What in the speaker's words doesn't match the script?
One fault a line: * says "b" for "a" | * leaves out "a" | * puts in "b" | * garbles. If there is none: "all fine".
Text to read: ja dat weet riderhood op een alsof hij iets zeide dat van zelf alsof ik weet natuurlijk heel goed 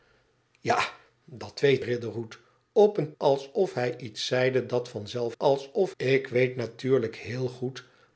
all fine